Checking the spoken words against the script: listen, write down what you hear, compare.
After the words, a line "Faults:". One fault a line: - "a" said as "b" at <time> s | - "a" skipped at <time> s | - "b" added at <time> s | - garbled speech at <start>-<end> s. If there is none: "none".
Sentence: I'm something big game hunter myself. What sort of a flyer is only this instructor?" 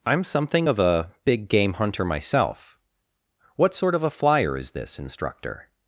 I'm something of a big game hunter myself. What sort of a flyer is this instructor?"
Faults:
- "of a" added at 0.6 s
- "only" skipped at 4.7 s